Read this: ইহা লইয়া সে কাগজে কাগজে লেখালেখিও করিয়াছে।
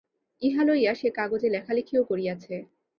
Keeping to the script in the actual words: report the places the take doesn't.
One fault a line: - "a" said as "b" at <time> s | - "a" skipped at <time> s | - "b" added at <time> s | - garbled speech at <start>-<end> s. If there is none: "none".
- "কাগজে" skipped at 1.5 s